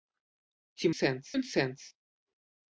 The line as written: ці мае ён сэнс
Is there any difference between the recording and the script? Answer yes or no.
yes